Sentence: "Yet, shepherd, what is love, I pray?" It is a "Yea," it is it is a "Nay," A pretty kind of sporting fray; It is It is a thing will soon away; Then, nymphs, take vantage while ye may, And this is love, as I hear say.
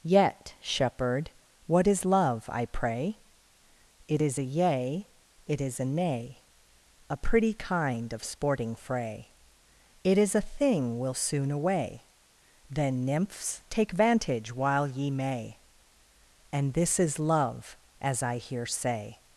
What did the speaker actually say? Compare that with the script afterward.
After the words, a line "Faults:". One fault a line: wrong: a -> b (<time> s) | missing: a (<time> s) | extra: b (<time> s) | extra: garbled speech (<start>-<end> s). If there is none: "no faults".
"Yet, shepherd, what is love, I pray?" It is a "Yea," it is a "Nay," A pretty kind of sporting fray; It is a thing will soon away; Then, nymphs, take vantage while ye may, And this is love, as I hear say.
Faults:
missing: it is (5.8 s)
missing: It is (10.4 s)